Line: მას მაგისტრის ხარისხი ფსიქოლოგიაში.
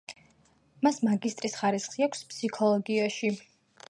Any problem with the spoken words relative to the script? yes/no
yes